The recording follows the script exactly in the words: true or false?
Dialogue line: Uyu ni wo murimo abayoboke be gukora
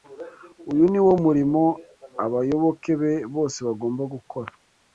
false